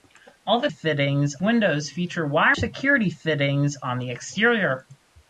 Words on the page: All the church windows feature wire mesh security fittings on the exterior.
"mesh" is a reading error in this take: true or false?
true